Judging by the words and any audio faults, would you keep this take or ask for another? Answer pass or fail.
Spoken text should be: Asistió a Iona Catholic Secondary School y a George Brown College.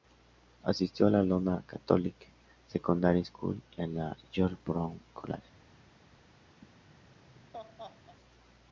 fail